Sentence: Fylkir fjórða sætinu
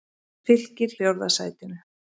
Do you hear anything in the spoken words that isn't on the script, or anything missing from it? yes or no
no